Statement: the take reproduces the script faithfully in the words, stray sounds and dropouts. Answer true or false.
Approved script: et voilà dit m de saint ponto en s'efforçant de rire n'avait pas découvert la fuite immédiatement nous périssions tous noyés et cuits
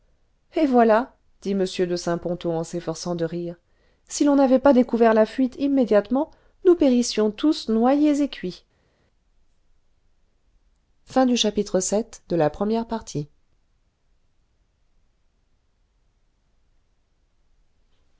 false